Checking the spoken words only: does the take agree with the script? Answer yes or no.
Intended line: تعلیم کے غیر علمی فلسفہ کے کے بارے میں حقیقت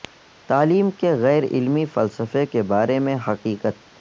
no